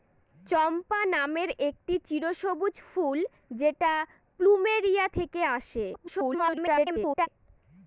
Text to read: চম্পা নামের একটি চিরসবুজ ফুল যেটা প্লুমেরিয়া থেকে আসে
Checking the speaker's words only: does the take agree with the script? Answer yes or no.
no